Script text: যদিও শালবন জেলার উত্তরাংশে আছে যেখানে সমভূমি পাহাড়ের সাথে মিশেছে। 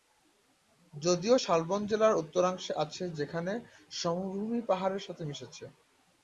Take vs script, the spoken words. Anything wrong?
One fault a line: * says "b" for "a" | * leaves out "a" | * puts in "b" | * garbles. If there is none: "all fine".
all fine